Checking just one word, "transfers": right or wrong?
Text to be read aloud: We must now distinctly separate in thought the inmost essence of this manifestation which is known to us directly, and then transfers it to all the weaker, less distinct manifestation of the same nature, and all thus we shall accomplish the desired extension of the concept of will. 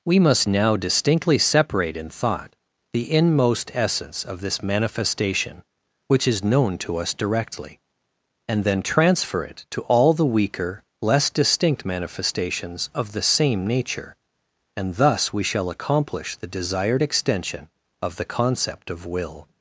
wrong